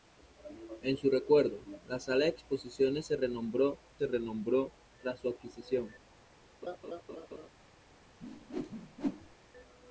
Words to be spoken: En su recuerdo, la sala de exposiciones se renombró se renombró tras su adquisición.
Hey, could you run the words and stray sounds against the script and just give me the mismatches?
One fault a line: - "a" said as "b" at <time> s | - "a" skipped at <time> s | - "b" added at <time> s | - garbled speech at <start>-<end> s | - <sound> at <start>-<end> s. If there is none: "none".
- laugh at 6.6-7.5 s
- whoosh at 8.2-9.3 s